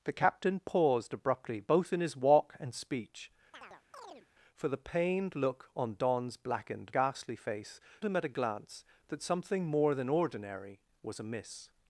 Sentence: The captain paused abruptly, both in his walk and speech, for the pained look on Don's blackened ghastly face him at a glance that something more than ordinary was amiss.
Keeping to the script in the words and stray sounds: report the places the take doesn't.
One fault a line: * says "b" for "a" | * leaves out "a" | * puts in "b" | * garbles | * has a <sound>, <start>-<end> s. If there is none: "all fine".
* has a chirp, 3.5-4.3 s